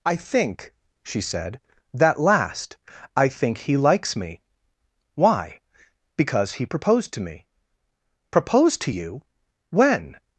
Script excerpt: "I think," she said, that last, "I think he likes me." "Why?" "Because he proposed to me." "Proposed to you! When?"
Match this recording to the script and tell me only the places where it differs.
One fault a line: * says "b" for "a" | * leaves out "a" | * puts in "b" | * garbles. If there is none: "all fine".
all fine